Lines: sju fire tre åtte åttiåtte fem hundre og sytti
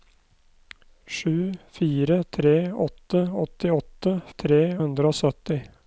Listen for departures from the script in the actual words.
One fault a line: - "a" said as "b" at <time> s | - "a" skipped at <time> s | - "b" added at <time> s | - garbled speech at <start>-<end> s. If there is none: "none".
- "fem" said as "tre" at 4.3 s